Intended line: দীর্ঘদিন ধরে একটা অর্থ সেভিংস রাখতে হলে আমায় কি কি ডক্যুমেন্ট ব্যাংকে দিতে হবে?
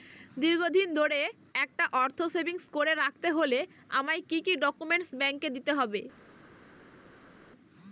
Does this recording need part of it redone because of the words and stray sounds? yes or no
yes